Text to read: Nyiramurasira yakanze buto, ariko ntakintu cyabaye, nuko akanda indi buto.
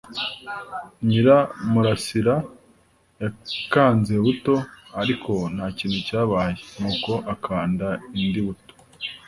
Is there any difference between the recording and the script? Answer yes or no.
no